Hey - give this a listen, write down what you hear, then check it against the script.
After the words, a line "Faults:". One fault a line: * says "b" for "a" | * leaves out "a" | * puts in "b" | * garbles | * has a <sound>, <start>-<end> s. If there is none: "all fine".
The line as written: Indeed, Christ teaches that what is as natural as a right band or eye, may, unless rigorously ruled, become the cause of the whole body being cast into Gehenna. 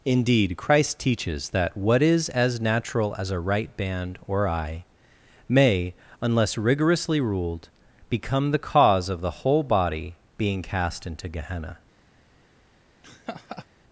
Indeed, Christ teaches that what is as natural as a right band or eye, may, unless rigorously ruled, become the cause of the whole body being cast into Gehenna.
Faults:
* has a laugh, 13.0-13.7 s